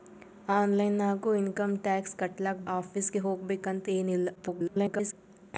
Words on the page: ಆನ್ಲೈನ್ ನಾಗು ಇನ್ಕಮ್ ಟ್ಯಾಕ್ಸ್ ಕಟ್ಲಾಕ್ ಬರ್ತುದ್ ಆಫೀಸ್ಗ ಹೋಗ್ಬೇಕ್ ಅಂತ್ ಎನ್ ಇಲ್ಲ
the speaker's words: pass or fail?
fail